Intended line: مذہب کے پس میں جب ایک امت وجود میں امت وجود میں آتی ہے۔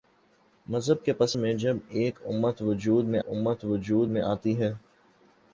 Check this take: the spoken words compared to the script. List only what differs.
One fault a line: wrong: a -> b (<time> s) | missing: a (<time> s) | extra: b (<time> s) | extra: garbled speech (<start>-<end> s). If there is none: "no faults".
no faults